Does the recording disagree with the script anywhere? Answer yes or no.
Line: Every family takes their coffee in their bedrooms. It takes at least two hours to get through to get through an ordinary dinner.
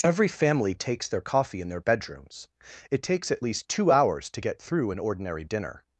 yes